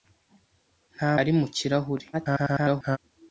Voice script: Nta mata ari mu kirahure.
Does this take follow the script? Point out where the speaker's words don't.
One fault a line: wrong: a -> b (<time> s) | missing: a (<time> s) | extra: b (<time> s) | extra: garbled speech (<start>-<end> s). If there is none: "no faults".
missing: mata (1.1 s)
extra: garbled speech (2.1-3.0 s)